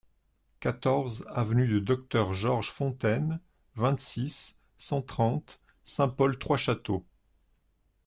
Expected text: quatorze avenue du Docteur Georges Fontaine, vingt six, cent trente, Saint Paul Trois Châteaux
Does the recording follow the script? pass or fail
pass